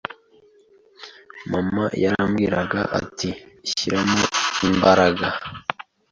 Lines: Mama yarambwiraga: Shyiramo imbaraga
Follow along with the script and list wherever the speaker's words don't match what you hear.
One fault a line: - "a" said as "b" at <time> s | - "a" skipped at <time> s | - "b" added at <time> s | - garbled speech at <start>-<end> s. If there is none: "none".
- "ati" added at 3.0 s